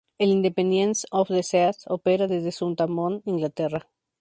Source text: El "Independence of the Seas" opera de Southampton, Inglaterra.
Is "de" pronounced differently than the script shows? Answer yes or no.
yes